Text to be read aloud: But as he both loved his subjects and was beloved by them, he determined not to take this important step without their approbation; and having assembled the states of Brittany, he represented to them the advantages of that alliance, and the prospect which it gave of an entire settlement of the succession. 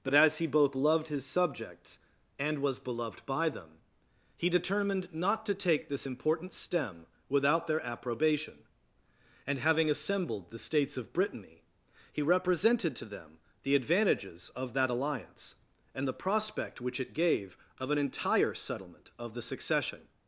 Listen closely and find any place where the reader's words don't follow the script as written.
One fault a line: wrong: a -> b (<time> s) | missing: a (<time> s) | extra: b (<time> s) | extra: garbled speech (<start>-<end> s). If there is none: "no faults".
wrong: step -> stem (6.5 s)